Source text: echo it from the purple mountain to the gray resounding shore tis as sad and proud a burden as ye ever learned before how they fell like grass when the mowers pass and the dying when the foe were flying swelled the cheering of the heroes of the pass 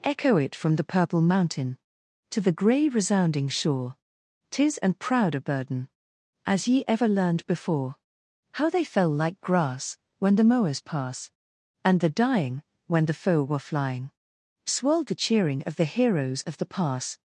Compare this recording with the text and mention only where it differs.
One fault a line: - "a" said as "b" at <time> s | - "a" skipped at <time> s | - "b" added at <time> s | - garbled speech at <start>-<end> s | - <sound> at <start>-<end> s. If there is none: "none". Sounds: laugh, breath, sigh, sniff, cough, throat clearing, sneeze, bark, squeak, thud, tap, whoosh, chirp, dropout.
- "as sad" skipped at 4.8 s